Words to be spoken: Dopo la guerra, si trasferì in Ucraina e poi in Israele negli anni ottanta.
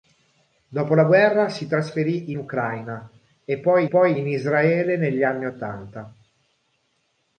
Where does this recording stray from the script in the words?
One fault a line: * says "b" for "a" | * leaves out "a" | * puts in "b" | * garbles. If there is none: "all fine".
* leaves out "in"
* puts in "poi"